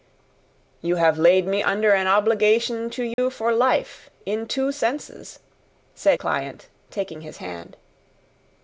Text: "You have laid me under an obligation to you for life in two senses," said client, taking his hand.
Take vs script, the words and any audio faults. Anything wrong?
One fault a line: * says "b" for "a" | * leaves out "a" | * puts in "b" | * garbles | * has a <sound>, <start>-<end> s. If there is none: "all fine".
* has a dropout, 3.1-3.2 s